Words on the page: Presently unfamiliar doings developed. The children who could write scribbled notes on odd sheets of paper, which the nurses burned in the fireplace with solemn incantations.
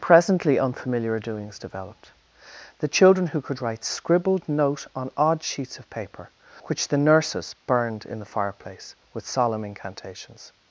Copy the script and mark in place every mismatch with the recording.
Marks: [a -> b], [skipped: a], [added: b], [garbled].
Presently unfamiliar doings developed. The children who could write scribbled [notes -> note] on odd sheets of paper, which the nurses burned in the fireplace with solemn incantations.